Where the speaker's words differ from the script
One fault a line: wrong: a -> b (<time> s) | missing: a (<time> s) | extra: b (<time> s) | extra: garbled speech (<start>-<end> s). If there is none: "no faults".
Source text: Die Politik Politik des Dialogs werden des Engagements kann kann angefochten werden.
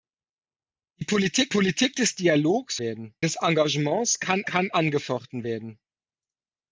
no faults